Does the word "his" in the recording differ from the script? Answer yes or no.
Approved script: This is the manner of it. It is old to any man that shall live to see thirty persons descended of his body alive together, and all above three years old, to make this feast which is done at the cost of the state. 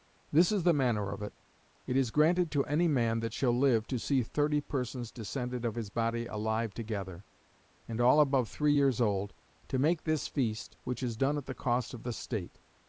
no